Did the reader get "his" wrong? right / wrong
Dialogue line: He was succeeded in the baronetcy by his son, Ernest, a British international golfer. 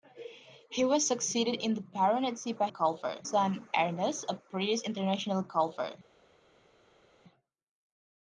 wrong